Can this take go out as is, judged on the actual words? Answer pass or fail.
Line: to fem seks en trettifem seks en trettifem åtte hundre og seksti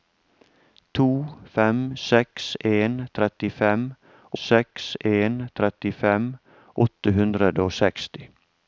pass